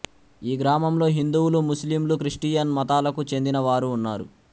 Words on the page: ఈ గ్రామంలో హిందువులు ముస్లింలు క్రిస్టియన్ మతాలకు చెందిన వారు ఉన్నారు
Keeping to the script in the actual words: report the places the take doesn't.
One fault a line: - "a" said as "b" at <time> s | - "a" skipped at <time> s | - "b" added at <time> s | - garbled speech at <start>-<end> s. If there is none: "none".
none